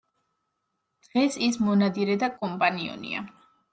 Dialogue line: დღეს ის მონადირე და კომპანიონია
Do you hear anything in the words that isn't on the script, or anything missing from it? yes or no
no